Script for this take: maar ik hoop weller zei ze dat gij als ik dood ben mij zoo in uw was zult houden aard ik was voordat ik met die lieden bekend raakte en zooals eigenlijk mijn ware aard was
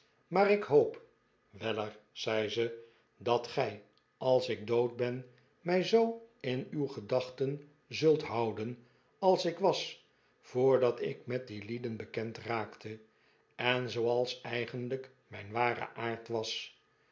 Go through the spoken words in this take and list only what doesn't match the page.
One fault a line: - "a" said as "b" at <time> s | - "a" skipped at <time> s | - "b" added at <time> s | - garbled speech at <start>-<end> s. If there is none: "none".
- "was" said as "gedachten" at 6.9 s
- "aard" said as "als" at 9.2 s